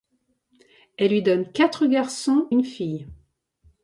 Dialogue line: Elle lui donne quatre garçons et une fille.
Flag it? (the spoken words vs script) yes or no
yes